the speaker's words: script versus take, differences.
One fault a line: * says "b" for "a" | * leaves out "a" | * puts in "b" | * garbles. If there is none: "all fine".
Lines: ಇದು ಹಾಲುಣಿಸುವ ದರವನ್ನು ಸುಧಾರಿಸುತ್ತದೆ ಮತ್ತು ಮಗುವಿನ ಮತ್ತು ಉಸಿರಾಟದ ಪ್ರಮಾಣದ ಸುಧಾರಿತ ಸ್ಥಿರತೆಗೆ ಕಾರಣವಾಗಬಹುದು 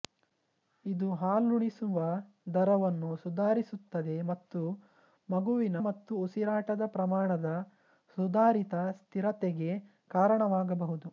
all fine